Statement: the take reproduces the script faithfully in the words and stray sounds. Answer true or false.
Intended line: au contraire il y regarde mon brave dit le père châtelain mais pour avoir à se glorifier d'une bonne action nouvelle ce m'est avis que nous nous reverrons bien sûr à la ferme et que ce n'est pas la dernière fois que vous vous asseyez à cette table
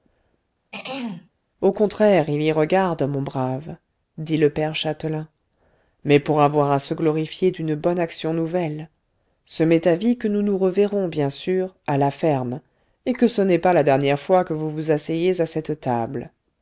false